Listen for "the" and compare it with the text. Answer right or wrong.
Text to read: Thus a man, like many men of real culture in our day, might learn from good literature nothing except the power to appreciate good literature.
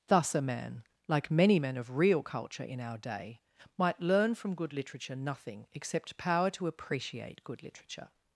wrong